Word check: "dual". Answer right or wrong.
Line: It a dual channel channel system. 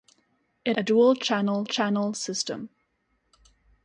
right